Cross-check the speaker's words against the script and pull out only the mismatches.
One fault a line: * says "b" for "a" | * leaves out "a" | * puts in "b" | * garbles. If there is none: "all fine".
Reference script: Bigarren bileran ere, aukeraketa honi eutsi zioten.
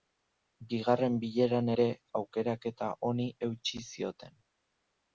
all fine